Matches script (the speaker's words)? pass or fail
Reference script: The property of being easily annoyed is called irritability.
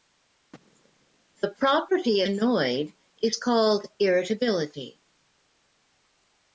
fail